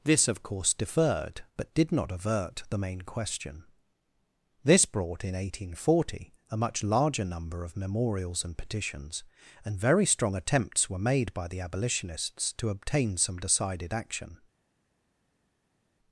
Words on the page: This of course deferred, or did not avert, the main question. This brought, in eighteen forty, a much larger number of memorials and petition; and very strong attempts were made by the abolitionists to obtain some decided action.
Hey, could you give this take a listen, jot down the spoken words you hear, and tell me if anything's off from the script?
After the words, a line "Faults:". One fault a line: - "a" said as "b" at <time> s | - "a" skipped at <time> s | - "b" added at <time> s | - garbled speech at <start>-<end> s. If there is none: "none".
This of course deferred, but did not avert, the main question. This brought, in eighteen forty, a much larger number of memorials and petitions; and very strong attempts were made by the abolitionists to obtain some decided action.
Faults:
- "or" said as "but" at 1.6 s
- "petition" said as "petitions" at 8.6 s